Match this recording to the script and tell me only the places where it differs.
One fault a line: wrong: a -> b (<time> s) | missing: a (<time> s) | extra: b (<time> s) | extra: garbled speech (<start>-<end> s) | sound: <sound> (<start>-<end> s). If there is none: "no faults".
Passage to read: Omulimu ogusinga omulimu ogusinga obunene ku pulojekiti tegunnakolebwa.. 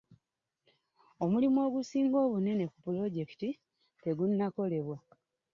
missing: omulimu ogusinga (2.2 s)